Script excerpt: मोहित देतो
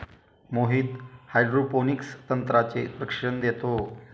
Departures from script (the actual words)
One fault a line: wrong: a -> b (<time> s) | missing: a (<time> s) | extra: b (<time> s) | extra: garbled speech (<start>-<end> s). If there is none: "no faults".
extra: हायड्रोपोनिक्स तंत्राचे प्रशिक्षण (1.3 s)